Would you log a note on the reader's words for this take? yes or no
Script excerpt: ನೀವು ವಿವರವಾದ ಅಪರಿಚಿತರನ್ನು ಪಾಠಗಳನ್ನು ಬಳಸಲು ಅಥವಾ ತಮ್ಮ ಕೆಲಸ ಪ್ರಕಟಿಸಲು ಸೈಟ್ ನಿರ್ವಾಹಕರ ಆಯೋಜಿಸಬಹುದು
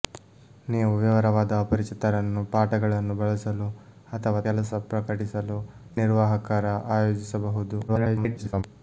yes